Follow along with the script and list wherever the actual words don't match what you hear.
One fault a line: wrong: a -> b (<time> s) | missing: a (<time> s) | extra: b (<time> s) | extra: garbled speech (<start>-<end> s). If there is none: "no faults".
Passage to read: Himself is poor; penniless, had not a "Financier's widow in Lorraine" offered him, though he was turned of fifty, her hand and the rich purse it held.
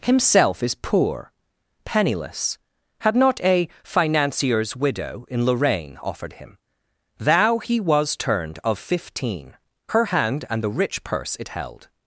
wrong: though -> thou (7.2 s)
wrong: fifty -> fifteen (8.8 s)